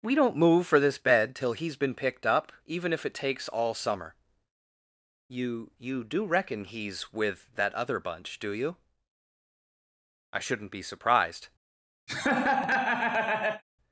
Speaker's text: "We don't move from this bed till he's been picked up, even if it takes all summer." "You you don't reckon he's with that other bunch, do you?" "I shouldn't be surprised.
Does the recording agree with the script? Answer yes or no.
no